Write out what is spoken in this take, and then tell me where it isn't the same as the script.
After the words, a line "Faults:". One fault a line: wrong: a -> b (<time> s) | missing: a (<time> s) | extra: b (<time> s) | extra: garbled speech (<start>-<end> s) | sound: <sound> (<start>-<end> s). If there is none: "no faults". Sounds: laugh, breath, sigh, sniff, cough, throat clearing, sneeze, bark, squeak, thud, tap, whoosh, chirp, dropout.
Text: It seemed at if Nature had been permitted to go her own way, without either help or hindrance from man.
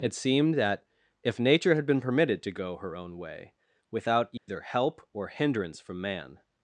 It seemed that if Nature had been permitted to go her own way, without either help or hindrance from man.
Faults:
wrong: at -> that (0.6 s)
sound: dropout (4.4-4.5 s)